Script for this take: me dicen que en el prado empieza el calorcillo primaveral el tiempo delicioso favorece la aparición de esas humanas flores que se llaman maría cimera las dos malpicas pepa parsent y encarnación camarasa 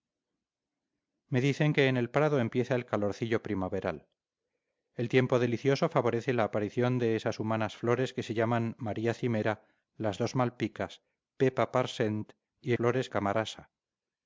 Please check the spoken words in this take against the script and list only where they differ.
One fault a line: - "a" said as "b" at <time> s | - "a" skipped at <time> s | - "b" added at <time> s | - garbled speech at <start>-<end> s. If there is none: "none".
- "encarnación" said as "flores" at 12.7 s